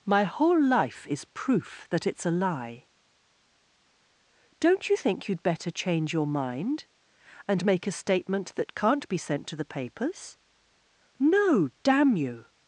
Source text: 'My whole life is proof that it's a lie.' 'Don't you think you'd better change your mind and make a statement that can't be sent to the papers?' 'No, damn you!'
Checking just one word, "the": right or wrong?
right